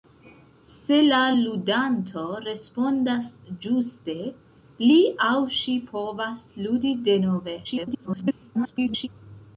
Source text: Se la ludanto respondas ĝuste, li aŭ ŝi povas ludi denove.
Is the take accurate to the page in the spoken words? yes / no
no